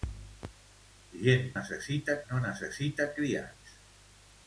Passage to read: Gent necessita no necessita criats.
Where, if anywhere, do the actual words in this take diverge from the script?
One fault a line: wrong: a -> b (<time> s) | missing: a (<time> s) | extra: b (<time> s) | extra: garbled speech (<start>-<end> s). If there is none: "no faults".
no faults